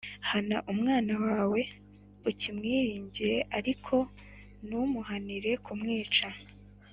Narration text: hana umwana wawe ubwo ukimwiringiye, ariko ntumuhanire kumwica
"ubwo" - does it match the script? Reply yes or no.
no